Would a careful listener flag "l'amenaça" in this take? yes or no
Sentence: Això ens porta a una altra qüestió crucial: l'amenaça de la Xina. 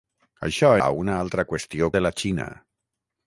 yes